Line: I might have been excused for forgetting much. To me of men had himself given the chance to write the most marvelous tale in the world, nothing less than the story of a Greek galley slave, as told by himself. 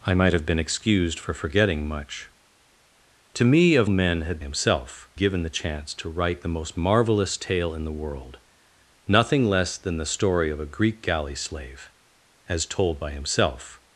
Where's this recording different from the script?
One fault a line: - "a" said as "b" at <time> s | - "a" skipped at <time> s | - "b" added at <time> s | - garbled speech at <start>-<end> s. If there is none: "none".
none